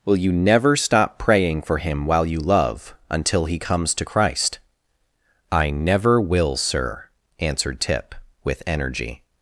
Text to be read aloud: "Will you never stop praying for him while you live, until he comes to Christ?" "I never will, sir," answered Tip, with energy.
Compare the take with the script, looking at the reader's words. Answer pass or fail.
fail